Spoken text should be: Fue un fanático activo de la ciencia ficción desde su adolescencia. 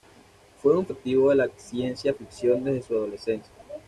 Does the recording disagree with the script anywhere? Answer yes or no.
yes